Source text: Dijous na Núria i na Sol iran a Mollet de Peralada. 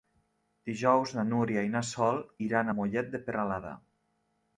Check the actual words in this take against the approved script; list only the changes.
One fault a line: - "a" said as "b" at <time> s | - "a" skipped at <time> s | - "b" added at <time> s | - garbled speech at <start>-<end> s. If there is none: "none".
none